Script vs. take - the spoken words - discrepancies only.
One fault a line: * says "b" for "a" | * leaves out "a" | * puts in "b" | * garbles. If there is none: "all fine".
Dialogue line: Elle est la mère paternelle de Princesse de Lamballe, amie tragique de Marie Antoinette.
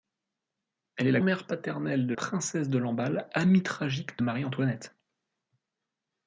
all fine